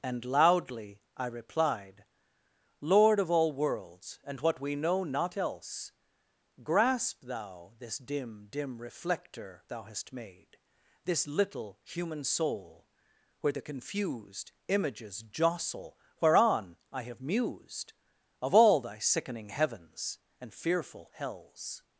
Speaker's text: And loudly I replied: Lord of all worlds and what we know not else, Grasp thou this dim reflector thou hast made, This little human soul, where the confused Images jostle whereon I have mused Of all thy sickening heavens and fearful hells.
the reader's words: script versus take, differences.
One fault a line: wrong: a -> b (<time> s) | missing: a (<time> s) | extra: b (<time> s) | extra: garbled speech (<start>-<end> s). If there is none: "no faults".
extra: dim (8.5 s)